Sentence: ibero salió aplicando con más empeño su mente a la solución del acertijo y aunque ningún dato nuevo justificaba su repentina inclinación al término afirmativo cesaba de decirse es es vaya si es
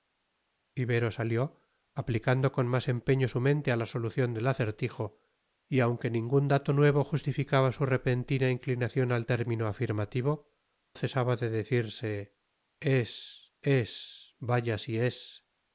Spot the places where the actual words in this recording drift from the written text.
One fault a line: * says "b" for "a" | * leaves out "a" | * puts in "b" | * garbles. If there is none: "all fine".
all fine